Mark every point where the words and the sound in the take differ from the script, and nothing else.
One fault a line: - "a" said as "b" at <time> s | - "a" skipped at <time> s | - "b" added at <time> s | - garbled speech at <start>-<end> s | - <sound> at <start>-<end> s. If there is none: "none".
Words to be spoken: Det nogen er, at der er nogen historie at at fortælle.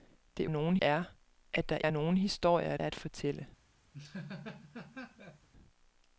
- laugh at 3.9-5.5 s